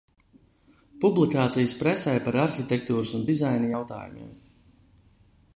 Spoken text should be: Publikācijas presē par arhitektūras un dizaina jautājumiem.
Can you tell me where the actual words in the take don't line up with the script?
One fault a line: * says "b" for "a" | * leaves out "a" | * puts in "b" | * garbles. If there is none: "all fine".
all fine